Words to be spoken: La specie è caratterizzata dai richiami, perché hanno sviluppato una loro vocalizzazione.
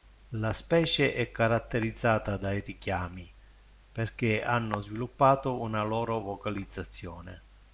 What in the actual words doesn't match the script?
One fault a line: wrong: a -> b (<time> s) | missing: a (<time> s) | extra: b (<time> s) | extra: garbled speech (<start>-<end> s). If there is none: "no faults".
no faults